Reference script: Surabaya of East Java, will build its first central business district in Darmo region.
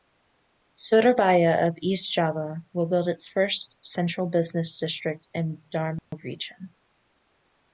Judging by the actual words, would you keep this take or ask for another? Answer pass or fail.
pass